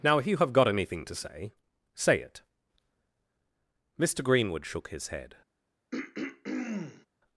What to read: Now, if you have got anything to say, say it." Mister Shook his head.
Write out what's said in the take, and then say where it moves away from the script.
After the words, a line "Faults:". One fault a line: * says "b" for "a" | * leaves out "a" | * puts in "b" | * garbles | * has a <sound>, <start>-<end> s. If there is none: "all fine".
Now, if you have got anything to say, say it." Mister Greenwood shook his head.
Faults:
* puts in "Greenwood"
* has a throat clearing, 5.9-7.1 s